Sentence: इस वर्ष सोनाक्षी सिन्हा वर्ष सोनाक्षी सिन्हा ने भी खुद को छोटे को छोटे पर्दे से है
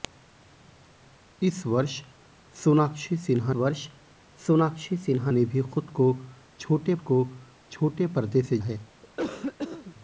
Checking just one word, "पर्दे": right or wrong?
right